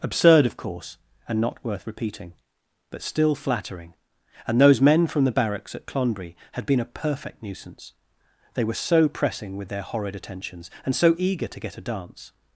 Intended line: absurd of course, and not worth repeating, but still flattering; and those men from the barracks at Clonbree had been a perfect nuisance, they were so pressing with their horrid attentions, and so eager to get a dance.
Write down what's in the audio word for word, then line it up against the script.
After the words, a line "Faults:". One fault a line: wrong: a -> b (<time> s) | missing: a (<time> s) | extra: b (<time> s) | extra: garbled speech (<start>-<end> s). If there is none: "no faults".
absurd of course, and not worth repeating, but still flattering; and those men from the barracks at Clonbree had been a perfect nuisance, they were so pressing with their horrid attentions, and so eager to get a dance.
Faults:
no faults